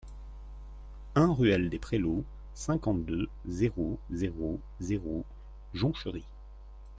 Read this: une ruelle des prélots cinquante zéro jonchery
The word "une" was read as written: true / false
false